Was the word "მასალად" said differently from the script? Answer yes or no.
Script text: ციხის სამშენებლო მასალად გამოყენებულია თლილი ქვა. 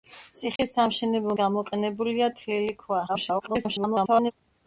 yes